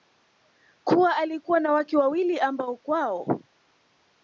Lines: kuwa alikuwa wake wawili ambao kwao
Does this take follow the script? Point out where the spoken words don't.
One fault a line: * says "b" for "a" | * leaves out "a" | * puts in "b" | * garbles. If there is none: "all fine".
* puts in "na"